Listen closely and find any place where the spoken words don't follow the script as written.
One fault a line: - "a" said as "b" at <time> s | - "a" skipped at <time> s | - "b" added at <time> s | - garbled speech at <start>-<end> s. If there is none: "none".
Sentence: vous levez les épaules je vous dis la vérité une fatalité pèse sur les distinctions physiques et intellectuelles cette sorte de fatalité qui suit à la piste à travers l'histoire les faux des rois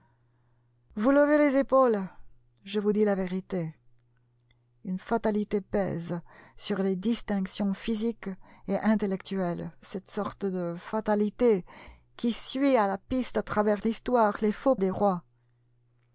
none